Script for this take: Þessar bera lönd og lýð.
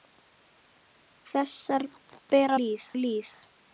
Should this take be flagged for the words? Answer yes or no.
yes